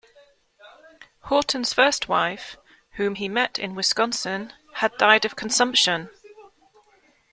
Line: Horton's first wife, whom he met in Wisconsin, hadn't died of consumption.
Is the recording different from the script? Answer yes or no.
yes